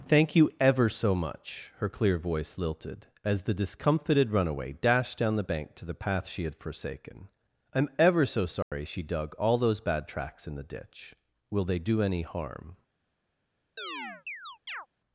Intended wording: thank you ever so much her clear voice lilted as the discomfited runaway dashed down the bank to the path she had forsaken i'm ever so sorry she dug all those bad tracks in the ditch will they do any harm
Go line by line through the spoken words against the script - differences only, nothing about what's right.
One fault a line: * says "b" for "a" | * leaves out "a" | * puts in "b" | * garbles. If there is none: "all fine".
all fine